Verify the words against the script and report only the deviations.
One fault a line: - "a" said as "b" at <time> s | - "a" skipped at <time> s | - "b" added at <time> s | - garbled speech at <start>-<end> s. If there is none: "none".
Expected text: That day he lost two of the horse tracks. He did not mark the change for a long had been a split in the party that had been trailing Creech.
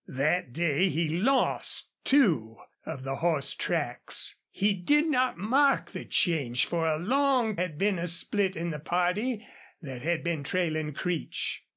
none